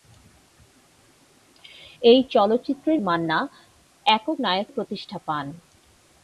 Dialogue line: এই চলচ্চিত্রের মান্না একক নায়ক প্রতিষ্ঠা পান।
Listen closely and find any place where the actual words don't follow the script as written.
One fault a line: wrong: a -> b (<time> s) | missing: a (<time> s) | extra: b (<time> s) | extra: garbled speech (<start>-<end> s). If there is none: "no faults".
no faults